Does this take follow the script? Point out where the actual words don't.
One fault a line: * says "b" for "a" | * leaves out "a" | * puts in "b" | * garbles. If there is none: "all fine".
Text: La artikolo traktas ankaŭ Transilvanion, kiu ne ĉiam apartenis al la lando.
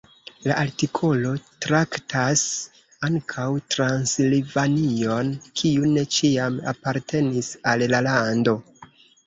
all fine